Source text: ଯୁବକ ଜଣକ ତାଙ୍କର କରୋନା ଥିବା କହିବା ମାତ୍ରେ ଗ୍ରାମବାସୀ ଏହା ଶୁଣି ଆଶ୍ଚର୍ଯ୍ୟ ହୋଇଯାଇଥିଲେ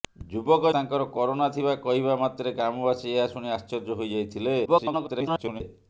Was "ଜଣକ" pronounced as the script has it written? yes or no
no